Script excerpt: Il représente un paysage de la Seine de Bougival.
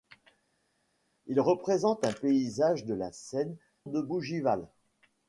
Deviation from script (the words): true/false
false